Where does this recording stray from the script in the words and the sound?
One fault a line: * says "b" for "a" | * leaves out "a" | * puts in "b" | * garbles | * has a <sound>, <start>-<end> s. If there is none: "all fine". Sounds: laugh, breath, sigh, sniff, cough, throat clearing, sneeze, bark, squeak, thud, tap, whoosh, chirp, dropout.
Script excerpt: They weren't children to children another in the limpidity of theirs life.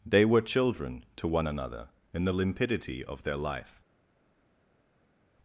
* says "were" for "weren't"
* says "one" for "children"
* says "their" for "theirs"